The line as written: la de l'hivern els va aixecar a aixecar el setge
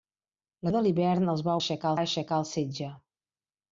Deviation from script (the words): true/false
false